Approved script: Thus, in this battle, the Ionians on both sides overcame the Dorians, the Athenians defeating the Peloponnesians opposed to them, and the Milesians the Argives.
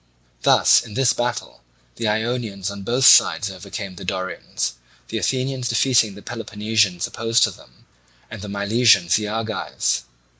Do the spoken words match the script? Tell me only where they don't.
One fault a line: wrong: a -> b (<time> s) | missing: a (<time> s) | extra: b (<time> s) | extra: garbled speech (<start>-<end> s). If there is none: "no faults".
no faults